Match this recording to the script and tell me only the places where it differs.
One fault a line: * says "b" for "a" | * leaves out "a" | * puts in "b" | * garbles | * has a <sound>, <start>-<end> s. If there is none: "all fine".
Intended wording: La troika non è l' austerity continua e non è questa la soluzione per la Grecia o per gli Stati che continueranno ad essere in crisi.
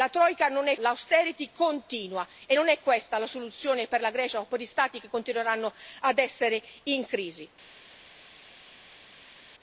all fine